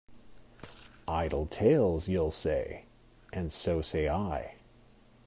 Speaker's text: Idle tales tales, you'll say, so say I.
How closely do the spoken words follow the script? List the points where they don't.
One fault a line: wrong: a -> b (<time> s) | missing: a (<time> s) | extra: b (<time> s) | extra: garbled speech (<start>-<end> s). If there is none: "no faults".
missing: tales (2.1 s)
extra: and (3.3 s)